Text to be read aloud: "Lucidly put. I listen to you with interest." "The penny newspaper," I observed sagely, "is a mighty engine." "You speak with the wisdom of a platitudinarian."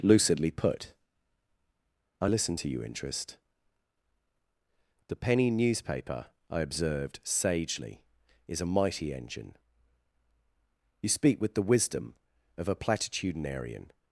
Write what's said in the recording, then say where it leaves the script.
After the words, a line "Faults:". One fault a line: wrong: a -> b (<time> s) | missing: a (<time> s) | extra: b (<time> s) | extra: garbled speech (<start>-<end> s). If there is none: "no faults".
"Lucidly put. I listen to you interest." "The penny newspaper," I observed sagely, "is a mighty engine." "You speak with the wisdom of a platitudinarian."
Faults:
missing: with (2.8 s)